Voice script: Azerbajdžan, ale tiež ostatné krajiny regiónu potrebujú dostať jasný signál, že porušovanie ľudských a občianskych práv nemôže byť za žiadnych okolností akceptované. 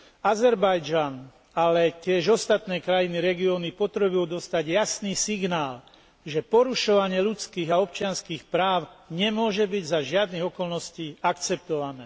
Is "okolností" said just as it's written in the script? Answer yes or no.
yes